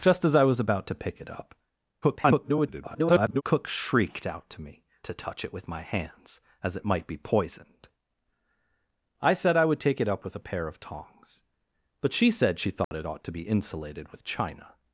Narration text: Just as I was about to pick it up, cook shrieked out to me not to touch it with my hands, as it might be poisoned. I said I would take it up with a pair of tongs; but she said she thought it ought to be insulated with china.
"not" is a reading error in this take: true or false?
true